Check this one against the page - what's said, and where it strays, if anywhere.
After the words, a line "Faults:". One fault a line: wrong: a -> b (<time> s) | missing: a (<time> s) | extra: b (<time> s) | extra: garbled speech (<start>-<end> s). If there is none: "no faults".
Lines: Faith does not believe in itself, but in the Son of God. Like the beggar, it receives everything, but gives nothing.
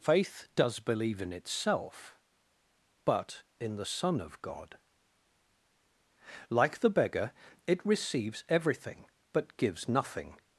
Faith does believe in itself, but in the Son of God. Like the beggar, it receives everything, but gives nothing.
Faults:
missing: not (0.8 s)